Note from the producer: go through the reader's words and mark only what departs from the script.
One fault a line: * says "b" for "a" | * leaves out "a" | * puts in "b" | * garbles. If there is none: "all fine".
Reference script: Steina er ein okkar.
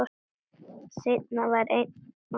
* says "var" for "er"